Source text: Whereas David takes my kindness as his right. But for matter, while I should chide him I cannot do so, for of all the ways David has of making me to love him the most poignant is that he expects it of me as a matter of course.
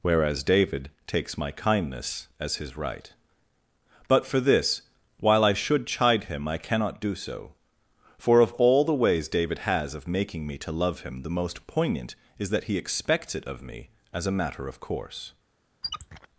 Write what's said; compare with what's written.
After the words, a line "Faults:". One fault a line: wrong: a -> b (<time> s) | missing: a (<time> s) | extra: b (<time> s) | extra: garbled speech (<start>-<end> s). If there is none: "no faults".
Whereas David takes my kindness as his right. But for this, while I should chide him I cannot do so, for of all the ways David has of making me to love him the most poignant is that he expects it of me as a matter of course.
Faults:
wrong: matter -> this (4.4 s)